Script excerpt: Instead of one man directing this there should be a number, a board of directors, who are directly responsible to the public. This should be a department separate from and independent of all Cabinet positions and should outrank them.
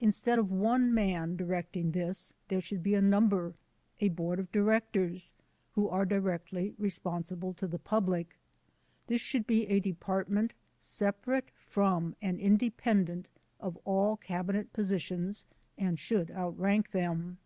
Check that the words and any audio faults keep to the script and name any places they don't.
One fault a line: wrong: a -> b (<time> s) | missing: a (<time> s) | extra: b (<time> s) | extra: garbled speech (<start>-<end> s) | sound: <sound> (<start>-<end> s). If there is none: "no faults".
no faults